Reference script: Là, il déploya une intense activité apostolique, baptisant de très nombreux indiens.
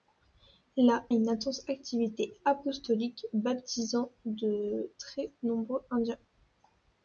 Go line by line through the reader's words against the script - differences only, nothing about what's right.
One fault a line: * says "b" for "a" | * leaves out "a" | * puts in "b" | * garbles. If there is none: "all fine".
* leaves out "il déploya"